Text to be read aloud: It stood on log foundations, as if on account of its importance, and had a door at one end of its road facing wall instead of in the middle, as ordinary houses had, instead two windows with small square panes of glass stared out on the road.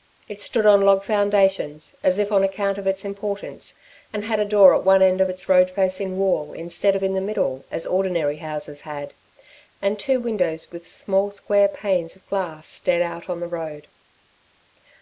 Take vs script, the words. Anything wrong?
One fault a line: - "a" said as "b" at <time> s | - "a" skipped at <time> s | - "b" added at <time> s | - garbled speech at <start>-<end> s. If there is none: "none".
- "instead" said as "and" at 9.8 s